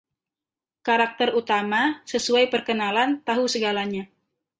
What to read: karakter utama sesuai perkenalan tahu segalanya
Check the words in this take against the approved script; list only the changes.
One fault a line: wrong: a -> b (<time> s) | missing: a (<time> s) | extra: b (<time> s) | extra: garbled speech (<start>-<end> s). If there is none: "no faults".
no faults